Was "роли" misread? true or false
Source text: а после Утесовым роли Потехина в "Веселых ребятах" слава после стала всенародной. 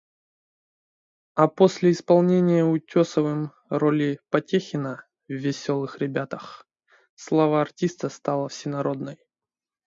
false